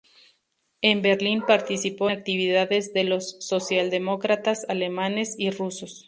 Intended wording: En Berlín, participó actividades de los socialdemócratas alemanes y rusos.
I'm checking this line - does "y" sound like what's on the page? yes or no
yes